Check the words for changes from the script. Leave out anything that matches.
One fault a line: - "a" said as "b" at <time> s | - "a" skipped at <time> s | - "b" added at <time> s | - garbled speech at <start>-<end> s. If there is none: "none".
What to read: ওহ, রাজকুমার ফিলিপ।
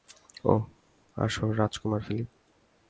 - "আসো" added at 1.2 s